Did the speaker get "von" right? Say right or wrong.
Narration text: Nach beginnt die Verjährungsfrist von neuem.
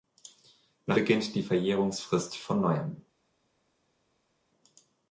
right